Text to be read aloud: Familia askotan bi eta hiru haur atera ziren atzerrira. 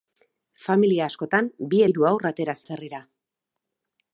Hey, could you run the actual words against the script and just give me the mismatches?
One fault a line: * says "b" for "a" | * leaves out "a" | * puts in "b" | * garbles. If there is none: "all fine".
* leaves out "eta"
* leaves out "ziren"